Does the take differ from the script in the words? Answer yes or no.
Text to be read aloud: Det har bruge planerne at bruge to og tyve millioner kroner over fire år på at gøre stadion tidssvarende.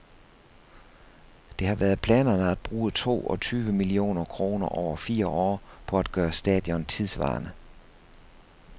yes